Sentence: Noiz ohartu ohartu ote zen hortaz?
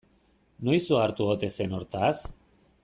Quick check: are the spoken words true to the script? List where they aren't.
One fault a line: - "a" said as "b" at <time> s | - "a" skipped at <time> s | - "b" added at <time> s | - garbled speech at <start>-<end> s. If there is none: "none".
- "ohartu" skipped at 1.3 s